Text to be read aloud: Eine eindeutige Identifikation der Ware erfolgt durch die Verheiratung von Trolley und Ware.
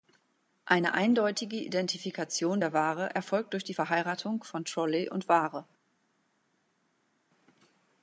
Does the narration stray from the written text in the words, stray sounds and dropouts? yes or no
no